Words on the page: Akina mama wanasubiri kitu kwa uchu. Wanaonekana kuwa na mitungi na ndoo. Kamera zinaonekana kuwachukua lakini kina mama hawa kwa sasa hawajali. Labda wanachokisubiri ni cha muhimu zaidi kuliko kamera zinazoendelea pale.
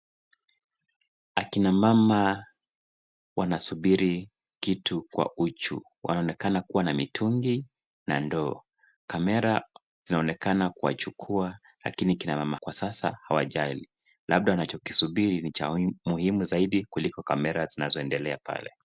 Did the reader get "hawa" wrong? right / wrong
wrong